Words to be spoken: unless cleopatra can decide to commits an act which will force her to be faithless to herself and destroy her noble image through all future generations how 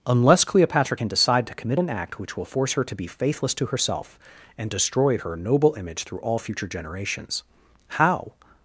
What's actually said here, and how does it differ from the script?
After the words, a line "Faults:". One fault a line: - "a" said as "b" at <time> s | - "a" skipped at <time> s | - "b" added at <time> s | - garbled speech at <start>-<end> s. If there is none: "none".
unless cleopatra can decide to commit an act which will force her to be faithless to herself and destroy her noble image through all future generations how
Faults:
- "commits" said as "commit" at 1.5 s